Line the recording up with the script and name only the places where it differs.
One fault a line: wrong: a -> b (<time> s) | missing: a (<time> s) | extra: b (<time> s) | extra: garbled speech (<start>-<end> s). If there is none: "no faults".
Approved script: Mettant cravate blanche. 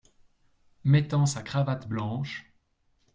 extra: sa (1.3 s)